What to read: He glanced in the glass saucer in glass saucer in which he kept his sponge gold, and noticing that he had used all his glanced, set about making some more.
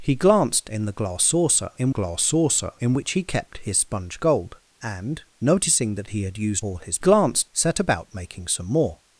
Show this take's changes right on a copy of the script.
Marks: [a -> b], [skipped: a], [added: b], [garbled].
He glanced in the glass saucer in glass saucer in which he kept his sponge gold, and noticing that he had used all his glanced, set about making some more.